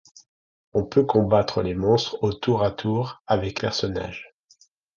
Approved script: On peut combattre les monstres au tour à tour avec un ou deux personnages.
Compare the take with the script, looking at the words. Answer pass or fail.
fail